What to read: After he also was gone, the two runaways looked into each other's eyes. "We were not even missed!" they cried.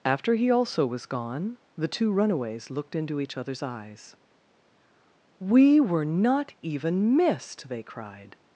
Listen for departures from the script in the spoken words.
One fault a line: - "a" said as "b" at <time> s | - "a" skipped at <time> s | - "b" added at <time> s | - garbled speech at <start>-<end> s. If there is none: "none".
none